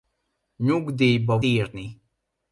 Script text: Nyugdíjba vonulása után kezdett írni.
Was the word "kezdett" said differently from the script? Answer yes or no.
yes